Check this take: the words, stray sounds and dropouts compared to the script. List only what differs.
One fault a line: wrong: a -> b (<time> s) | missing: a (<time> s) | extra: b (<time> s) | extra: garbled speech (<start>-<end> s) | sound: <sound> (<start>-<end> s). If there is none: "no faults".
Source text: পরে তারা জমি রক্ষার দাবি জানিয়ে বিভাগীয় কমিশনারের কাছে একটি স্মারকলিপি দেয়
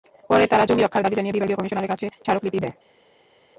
missing: একটি (2.0 s)